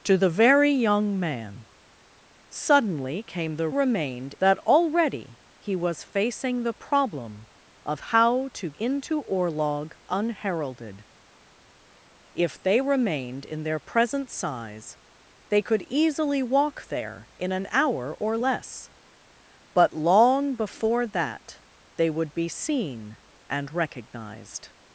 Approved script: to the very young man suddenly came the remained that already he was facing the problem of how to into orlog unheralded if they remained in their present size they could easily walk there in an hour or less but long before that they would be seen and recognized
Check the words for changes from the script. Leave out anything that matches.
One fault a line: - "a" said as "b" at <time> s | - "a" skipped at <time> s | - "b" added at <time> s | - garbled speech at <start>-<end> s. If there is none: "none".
none